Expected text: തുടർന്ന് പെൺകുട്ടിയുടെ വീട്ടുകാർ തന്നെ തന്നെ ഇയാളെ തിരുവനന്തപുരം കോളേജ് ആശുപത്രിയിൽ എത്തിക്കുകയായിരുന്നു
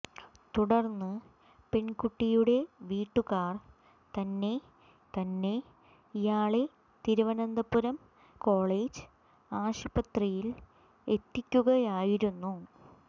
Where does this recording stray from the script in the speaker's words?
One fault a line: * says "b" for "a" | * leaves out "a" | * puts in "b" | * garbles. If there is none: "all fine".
all fine